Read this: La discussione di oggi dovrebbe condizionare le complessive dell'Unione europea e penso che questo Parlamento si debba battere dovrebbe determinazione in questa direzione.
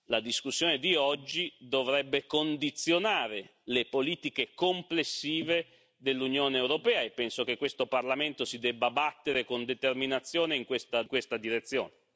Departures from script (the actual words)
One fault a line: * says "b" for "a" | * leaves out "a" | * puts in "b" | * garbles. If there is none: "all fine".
* puts in "politiche"
* says "con" for "dovrebbe"